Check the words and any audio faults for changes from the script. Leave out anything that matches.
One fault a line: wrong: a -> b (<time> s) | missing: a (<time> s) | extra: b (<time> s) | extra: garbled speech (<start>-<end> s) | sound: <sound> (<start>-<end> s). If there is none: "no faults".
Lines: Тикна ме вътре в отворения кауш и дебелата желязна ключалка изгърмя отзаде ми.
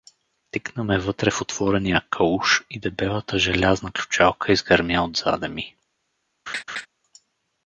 sound: laugh (6.5-6.9 s)